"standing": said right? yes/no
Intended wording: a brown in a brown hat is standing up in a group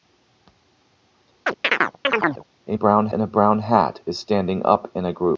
yes